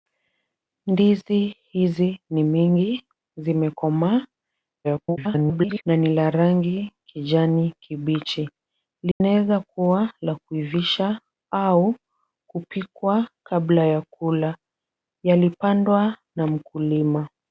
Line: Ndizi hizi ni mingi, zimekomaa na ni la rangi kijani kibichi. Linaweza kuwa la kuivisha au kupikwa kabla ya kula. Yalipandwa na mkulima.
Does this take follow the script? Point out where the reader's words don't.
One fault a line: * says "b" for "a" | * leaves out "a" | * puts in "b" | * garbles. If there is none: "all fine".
* garbles